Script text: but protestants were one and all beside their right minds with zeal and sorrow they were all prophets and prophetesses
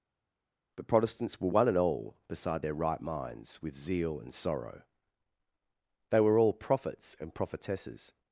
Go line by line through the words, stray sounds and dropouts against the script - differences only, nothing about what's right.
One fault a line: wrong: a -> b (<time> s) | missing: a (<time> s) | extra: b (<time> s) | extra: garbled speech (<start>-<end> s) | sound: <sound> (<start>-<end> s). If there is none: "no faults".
no faults